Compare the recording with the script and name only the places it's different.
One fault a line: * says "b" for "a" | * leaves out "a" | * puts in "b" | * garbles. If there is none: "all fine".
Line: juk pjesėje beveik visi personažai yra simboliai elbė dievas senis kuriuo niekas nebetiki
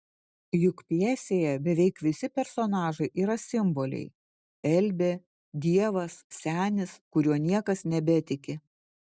all fine